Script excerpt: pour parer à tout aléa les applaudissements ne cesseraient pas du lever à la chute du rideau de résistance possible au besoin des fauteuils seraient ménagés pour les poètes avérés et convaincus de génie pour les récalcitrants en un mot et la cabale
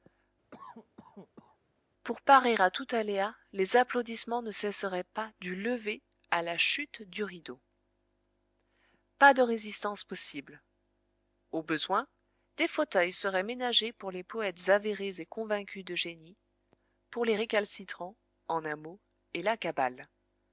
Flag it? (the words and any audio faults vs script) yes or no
yes